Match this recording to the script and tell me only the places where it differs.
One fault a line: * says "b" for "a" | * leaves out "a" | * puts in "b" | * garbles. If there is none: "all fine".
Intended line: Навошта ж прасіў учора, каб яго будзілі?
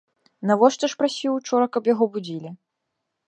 all fine